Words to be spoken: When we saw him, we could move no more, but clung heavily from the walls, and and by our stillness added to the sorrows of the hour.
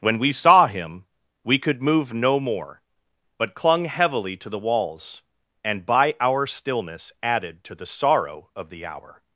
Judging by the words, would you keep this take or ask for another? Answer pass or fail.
fail